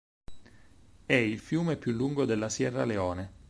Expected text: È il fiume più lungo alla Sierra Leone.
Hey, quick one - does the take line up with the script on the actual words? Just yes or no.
no